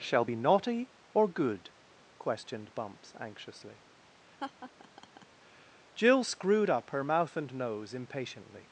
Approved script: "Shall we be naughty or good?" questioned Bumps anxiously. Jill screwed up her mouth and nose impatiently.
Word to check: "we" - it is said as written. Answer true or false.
false